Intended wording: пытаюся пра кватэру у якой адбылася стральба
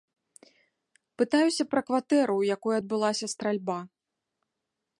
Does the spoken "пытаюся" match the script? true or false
true